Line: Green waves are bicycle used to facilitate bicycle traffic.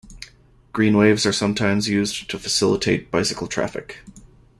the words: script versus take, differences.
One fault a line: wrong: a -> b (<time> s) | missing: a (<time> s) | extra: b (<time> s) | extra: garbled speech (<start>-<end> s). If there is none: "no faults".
wrong: bicycle -> sometimes (1.3 s)